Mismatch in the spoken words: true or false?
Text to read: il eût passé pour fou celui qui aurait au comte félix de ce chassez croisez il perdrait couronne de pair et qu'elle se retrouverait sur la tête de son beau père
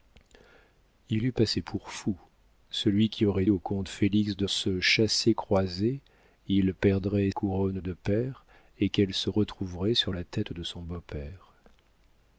false